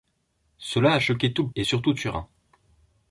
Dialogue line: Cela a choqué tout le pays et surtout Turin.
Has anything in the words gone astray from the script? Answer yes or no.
yes